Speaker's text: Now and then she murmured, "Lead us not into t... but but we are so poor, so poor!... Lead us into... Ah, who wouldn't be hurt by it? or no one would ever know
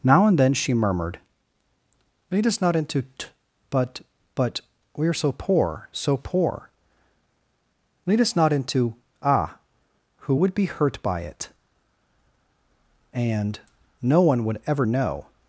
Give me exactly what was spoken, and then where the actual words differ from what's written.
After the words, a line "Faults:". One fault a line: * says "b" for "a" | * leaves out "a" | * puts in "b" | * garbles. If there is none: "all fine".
Now and then she murmured, "Lead us not into t... but but we are so poor, so poor!... Lead us not into... Ah, who would be hurt by it? and no one would ever know
Faults:
* puts in "not"
* says "would" for "wouldn't"
* says "and" for "or"